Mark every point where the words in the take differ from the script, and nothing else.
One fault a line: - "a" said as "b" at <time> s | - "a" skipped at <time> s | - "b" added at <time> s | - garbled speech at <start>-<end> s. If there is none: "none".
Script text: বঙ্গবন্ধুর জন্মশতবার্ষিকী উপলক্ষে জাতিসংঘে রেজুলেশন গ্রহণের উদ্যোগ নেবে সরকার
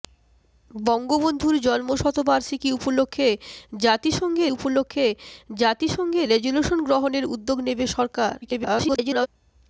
- "উপলক্ষে জাতিসংঘে" added at 4.5 s
- garbled speech at 8.4-9.3 s